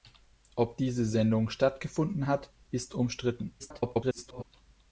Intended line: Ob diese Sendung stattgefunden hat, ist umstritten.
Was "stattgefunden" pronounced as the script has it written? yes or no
yes